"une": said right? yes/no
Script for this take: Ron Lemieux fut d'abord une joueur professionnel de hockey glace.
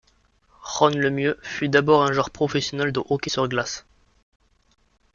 no